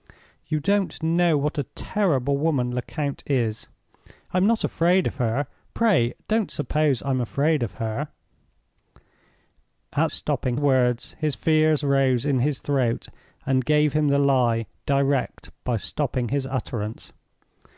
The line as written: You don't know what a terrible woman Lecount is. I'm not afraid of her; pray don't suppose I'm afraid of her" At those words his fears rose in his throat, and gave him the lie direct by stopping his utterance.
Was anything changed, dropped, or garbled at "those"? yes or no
yes